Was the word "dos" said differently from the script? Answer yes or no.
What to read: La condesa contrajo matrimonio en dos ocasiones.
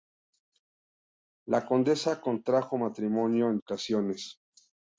yes